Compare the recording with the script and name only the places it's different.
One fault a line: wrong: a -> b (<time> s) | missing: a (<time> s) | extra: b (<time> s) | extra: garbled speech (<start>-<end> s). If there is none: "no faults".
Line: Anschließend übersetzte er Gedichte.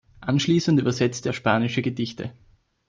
extra: spanische (1.3 s)